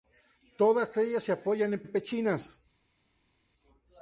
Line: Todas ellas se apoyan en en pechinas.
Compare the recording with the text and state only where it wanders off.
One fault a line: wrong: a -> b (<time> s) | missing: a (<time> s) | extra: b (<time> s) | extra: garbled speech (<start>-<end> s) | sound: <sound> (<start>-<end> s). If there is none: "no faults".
no faults